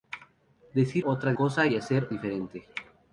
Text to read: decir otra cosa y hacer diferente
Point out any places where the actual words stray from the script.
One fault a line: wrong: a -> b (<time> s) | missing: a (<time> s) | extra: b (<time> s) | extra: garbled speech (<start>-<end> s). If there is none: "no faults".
no faults